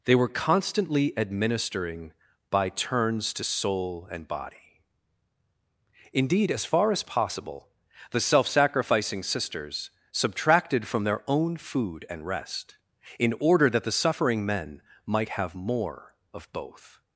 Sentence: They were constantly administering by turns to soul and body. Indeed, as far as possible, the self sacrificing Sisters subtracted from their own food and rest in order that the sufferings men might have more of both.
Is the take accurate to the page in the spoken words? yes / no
no